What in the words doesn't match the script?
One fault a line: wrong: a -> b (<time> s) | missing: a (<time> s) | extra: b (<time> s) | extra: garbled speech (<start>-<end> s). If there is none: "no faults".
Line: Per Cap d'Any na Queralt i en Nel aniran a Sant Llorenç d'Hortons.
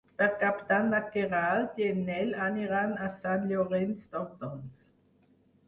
no faults